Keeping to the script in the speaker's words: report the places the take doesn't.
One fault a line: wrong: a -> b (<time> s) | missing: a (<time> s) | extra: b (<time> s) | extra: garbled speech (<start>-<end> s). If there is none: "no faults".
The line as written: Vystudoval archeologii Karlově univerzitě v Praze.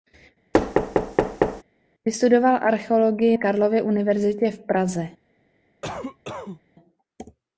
no faults